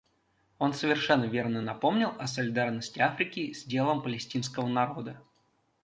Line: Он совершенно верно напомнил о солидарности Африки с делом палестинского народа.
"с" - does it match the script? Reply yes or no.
yes